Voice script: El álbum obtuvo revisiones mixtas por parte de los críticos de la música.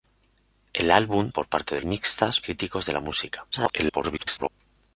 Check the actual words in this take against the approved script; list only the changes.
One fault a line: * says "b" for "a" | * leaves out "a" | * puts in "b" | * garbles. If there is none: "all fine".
* leaves out "obtuvo revisiones mixtas"
* says "mixtas" for "los"
* garbles